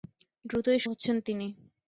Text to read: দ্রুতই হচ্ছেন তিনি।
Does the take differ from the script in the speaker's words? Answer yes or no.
no